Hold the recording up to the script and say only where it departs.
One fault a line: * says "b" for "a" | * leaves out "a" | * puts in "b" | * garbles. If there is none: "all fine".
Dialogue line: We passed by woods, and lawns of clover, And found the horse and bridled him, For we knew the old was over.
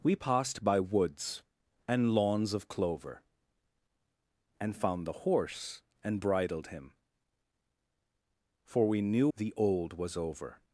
all fine